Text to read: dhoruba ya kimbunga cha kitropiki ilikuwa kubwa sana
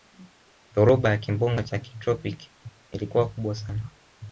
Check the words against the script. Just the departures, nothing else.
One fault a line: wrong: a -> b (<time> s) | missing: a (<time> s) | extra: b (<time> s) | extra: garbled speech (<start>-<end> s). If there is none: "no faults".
no faults